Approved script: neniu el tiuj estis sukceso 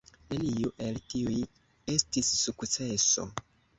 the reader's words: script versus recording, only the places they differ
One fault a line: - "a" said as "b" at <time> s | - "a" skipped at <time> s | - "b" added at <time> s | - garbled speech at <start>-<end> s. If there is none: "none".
none